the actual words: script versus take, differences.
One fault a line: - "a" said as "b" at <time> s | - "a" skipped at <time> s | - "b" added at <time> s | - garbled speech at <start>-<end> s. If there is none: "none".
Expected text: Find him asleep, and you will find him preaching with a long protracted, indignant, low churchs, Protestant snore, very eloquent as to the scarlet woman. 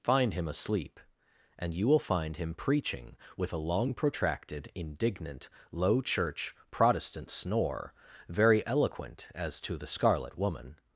- "churchs" said as "church" at 6.0 s